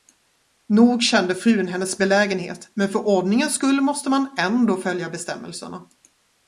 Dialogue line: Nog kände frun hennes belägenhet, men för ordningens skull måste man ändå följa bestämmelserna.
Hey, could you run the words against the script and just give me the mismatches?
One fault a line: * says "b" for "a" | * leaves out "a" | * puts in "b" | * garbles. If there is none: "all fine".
all fine